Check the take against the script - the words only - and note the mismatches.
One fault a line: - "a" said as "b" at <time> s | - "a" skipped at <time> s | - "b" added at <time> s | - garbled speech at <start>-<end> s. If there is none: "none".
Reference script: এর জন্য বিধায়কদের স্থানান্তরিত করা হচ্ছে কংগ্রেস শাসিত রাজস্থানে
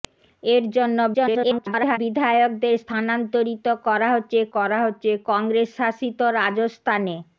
- garbled speech at 1.1-2.0 s
- "করা হচ্ছে" added at 4.5 s